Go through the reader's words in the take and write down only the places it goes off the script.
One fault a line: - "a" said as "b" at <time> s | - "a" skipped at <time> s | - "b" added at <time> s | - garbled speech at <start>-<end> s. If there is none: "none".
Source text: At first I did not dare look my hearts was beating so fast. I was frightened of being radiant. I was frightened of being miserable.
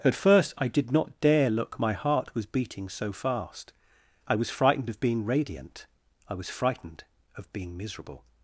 - "hearts" said as "heart" at 1.9 s